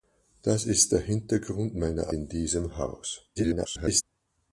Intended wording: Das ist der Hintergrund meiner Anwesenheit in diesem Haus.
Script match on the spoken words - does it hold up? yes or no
no